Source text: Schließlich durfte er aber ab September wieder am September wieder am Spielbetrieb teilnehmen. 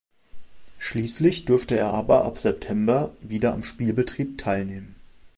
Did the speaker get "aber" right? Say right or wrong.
right